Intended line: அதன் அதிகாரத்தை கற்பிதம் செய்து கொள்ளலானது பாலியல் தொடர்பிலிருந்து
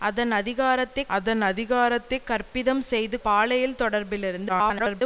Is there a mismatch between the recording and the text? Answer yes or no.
yes